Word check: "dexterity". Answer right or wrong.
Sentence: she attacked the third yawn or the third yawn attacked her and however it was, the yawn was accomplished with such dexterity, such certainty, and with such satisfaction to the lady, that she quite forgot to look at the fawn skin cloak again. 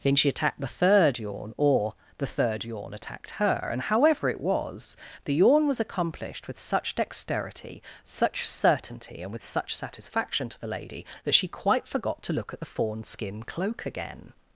right